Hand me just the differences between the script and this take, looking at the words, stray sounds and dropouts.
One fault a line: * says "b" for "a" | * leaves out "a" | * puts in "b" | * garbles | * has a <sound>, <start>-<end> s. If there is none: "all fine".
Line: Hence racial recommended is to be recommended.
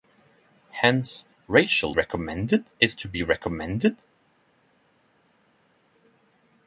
all fine